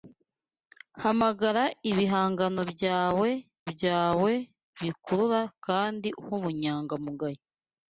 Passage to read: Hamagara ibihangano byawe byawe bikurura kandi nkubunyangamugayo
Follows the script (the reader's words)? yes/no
yes